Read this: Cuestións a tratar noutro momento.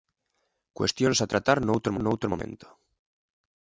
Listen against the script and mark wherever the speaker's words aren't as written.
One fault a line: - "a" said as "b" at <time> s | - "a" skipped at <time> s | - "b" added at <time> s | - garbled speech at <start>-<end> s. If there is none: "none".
- "noutro" added at 2.0 s